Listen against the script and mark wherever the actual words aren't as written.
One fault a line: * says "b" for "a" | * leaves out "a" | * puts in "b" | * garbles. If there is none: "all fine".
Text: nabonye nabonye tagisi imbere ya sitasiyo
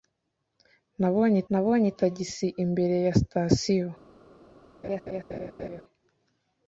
all fine